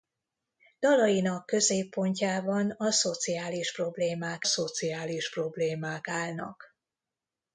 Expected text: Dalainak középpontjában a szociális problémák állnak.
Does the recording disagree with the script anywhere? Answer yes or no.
yes